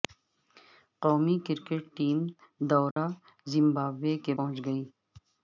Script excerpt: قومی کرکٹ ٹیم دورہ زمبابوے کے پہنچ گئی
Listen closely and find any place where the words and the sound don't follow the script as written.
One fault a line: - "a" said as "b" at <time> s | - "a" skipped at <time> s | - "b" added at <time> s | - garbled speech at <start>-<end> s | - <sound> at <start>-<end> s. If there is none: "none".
- dropout at 2.9-3.0 s